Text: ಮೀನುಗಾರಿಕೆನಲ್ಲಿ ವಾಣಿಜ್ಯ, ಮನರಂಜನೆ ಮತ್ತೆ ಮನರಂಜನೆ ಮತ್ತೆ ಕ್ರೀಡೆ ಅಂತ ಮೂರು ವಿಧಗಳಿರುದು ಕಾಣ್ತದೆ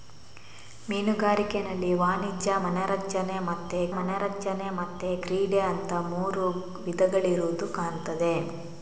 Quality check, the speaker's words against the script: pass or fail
pass